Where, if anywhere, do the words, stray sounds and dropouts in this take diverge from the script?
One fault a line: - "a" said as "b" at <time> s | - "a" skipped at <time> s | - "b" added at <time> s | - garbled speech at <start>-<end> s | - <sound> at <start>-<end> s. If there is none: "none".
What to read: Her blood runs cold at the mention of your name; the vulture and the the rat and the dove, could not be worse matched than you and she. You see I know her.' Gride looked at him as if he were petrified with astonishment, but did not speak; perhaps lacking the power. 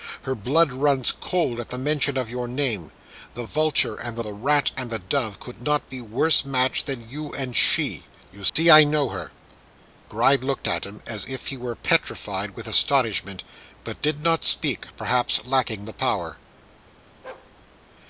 - dropout at 8.5-8.6 s
- bark at 17.2-17.5 s